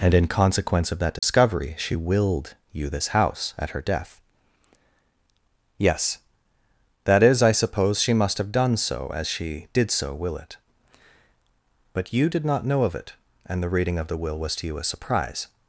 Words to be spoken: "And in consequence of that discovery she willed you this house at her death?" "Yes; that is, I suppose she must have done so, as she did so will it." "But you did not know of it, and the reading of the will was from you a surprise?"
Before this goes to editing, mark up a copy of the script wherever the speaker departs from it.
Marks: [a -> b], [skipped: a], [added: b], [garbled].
"And in consequence of that discovery she willed you this house at her death?" "Yes; that is, I suppose she must have done so, as she did so will it." "But you did not know of it, and the reading of the will was [from -> to] you a surprise?"